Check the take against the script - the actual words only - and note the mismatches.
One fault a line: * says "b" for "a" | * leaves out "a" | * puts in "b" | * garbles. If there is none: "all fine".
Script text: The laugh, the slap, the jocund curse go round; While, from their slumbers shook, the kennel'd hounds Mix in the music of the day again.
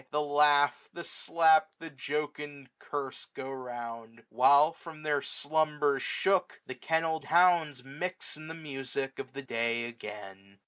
all fine